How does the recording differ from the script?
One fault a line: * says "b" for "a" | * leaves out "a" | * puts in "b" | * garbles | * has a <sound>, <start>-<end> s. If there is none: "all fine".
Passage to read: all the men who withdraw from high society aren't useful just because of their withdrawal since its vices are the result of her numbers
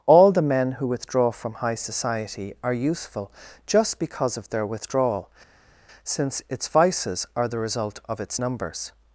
* says "are" for "aren't"
* says "its" for "her"